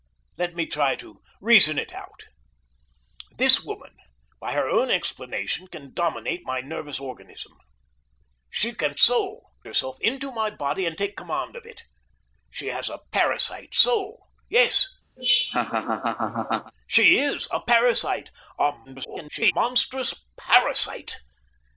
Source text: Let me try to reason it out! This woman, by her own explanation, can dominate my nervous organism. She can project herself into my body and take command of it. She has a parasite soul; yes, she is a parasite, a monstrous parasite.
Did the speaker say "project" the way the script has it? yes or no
no